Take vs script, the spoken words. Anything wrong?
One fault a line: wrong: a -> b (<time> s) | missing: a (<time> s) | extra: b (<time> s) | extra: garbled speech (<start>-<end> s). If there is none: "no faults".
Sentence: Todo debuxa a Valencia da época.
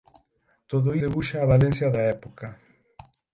no faults